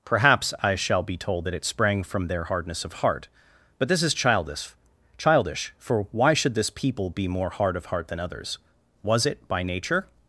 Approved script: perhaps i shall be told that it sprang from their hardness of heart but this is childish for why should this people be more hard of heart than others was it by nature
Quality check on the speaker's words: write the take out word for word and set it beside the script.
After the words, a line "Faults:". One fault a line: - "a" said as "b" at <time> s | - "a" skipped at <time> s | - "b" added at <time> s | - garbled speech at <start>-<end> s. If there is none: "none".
perhaps i shall be told that it sprang from their hardness of heart but this is childish childish for why should this people be more hard of heart than others was it by nature
Faults:
- "childish" added at 5.2 s